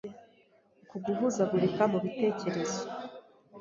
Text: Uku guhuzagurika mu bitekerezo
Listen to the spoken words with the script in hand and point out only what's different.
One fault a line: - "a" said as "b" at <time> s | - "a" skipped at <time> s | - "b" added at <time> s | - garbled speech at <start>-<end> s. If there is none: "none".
none